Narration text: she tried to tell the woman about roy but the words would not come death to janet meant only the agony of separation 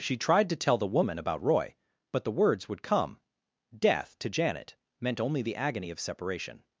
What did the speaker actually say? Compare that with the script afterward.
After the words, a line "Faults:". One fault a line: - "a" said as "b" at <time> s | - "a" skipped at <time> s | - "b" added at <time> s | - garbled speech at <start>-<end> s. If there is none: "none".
she tried to tell the woman about roy but the words would come death to janet meant only the agony of separation
Faults:
- "not" skipped at 2.8 s